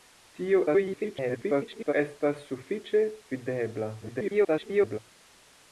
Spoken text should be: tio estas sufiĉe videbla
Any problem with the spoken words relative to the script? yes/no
yes